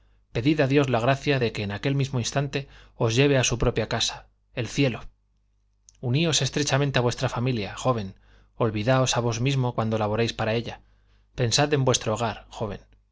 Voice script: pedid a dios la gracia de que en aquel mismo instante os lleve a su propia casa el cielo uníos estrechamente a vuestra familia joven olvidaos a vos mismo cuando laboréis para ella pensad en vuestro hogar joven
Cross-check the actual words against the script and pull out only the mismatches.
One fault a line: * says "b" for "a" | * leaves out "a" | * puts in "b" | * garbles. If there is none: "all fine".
all fine